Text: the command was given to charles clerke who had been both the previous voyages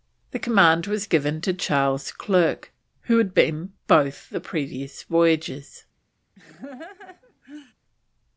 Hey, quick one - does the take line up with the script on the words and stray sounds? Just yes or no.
no